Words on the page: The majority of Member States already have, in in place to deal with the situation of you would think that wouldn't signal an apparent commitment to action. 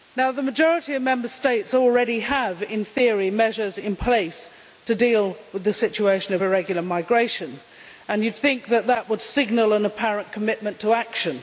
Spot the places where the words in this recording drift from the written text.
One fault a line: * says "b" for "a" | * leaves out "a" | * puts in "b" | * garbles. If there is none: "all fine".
* puts in "theory measures"
* puts in "irregular migration and"
* says "would" for "wouldn't"